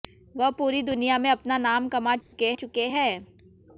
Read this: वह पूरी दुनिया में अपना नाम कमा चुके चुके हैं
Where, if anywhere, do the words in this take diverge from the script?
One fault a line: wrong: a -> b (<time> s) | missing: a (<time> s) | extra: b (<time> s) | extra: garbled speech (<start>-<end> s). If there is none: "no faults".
no faults